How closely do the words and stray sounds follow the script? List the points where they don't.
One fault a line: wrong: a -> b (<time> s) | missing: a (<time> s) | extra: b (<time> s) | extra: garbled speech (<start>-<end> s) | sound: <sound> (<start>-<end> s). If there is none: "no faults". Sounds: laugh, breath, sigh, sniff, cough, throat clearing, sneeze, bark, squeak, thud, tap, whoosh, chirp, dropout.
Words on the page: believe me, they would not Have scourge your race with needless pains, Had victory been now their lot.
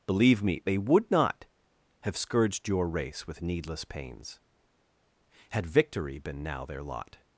wrong: scourge -> scourged (2.2 s)